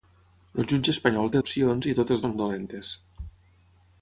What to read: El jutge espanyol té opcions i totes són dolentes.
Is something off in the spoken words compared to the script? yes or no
no